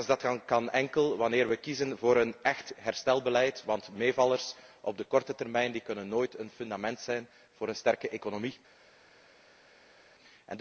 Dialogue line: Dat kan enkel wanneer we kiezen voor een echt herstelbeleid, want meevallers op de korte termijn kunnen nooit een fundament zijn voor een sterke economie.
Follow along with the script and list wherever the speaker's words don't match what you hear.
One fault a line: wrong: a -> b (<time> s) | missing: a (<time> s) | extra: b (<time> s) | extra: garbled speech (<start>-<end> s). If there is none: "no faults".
no faults